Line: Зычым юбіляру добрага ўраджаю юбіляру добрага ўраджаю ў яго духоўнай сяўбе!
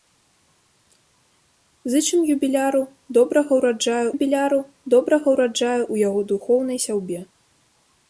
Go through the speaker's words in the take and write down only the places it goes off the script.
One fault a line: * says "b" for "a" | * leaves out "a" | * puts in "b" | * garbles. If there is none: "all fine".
all fine